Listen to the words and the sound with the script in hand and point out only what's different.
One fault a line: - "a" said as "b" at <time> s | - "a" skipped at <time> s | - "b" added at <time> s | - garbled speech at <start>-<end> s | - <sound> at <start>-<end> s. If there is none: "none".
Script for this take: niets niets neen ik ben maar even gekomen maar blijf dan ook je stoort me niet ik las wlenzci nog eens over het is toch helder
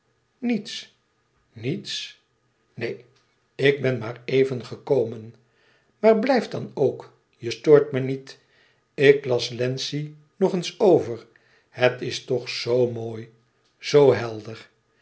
- "zoo mooi zoo" added at 12.5 s